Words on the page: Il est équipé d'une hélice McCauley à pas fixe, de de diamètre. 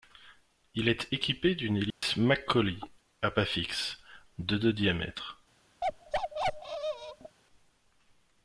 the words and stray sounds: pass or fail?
fail